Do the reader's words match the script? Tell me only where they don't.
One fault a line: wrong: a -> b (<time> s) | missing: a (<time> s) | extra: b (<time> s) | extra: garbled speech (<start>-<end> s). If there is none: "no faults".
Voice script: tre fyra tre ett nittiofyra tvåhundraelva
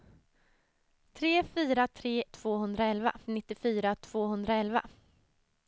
wrong: ett -> tvåhundraelva (2.2 s)